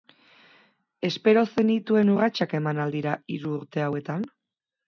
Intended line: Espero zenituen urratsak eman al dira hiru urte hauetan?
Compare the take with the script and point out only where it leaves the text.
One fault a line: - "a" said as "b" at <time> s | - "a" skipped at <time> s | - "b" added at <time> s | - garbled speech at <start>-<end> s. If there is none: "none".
none